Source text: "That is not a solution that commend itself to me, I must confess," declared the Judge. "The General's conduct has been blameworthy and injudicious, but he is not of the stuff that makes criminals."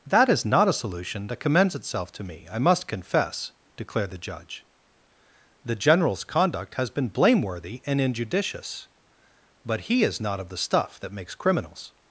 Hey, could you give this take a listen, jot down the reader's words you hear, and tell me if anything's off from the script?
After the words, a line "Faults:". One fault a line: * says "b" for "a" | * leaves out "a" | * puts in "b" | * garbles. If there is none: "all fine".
"That is not a solution that commends itself to me, I must confess," declared the Judge. "The General's conduct has been blameworthy and injudicious, but he is not of the stuff that makes criminals."
Faults:
* says "commends" for "commend"